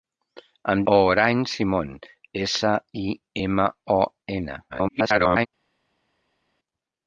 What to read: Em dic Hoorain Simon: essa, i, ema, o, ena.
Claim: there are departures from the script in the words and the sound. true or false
true